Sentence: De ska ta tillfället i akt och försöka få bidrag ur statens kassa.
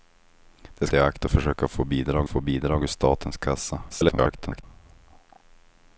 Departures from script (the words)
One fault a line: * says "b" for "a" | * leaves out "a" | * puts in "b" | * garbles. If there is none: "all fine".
* leaves out "ska ta tillfället"
* puts in "få bidrag"
* garbles